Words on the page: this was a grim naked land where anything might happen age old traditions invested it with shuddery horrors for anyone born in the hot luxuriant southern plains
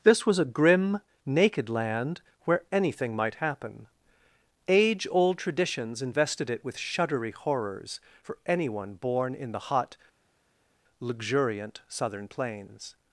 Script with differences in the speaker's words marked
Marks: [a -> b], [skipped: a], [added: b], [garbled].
this was a grim naked land where anything might happen age old traditions invested it with shuddery horrors for anyone born in the hot luxuriant southern plains